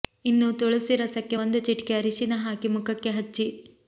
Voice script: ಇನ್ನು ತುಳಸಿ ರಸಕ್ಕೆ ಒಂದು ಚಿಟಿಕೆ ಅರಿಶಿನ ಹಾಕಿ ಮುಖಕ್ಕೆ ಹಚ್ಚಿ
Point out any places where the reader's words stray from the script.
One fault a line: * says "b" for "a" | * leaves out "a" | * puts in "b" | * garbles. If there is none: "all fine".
all fine